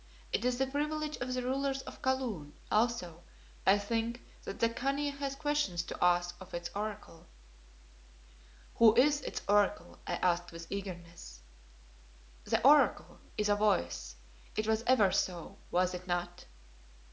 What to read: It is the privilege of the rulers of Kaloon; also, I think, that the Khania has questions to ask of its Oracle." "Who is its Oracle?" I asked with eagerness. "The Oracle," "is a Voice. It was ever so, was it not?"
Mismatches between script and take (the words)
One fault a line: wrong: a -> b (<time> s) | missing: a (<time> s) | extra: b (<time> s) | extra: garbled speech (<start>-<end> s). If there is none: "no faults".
no faults